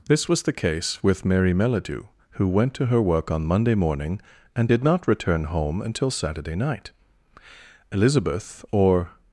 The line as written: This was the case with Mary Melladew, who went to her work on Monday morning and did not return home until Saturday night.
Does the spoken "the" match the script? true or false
true